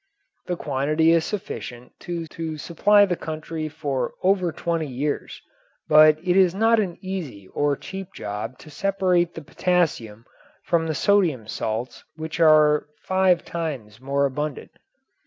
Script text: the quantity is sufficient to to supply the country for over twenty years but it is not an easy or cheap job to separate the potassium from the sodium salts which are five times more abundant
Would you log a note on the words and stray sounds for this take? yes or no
no